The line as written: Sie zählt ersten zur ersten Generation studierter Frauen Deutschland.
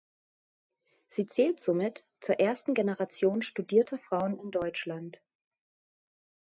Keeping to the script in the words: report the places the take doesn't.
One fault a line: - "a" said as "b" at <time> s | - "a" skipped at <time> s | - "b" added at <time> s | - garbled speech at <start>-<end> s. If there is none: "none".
- "ersten" said as "somit" at 1.6 s
- "in" added at 4.4 s